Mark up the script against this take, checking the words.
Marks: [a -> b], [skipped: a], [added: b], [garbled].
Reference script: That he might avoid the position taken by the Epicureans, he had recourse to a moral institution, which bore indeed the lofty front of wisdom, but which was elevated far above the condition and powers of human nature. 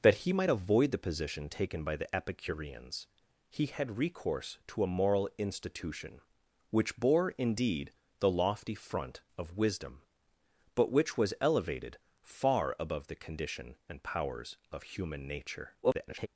That he might avoid the position taken by the Epicureans, he had recourse to a moral institution, which bore indeed the lofty front of wisdom, but which was elevated far above the condition and powers of human nature. [garbled]